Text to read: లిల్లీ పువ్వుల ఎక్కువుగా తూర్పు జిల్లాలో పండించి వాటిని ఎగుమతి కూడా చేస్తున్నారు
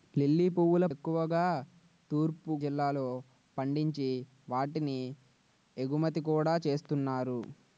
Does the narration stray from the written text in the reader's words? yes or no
no